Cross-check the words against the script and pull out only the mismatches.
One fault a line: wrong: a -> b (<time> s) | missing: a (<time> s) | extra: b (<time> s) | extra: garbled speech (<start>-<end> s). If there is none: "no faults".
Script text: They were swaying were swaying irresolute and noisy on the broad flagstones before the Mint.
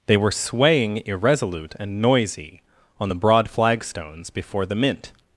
missing: were swaying (1.0 s)